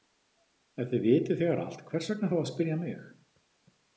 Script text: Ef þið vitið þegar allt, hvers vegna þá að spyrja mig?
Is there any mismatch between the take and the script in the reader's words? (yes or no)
no